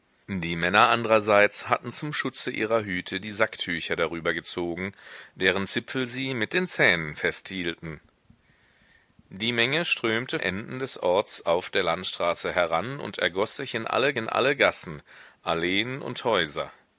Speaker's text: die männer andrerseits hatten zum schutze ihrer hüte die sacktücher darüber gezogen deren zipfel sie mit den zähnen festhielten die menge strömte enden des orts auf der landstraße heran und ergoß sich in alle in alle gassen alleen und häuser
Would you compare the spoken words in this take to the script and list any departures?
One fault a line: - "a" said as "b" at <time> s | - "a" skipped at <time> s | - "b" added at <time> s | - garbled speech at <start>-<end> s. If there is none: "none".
none